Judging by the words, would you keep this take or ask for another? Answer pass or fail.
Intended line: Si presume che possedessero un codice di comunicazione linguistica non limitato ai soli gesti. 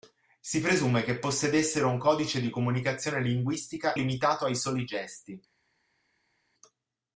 fail